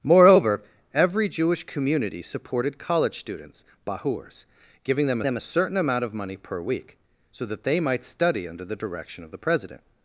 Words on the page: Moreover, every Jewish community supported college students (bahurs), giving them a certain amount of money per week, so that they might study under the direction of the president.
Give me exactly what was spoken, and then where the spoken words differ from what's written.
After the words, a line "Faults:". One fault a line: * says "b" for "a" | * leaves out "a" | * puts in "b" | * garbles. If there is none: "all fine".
Moreover, every Jewish community supported college students (bahurs), giving them them a certain amount of money per week, so that they might study under the direction of the president.
Faults:
* puts in "them"